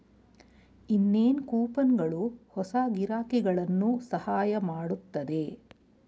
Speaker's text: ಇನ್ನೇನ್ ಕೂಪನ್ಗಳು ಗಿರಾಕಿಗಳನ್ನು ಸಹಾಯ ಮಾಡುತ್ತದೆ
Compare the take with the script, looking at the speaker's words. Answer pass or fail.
fail